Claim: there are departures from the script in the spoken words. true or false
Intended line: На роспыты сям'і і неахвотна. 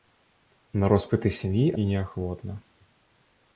false